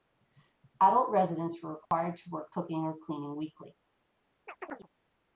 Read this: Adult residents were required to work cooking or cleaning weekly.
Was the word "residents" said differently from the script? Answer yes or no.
no